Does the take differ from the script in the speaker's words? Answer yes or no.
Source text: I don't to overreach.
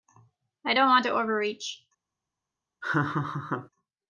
yes